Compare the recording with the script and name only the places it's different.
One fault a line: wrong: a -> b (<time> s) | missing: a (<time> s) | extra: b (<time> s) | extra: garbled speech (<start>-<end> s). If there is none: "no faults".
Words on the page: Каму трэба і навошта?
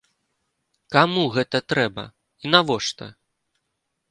extra: гэта (1.4 s)